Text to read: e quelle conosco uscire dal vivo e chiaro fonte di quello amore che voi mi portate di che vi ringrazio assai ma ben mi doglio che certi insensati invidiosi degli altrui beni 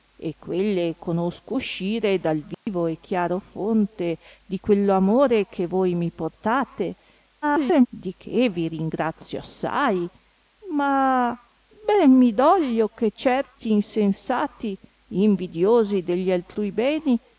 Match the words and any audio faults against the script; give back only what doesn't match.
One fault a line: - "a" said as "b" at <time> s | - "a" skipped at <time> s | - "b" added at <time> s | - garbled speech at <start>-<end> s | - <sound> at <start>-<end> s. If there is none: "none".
- dropout at 2.5-2.7 s
- garbled speech at 7.4-7.9 s